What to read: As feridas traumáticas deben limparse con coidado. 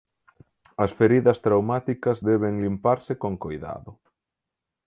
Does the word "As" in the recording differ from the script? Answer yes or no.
no